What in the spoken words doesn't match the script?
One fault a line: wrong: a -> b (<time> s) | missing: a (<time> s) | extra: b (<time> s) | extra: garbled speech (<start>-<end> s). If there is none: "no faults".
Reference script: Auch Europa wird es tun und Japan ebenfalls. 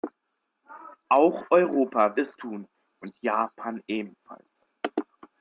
missing: wird (2.2 s)